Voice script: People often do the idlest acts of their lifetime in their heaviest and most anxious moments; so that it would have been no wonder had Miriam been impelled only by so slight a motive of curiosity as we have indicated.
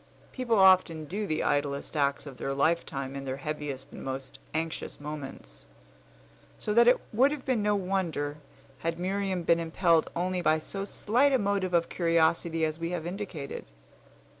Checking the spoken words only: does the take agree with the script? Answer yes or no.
yes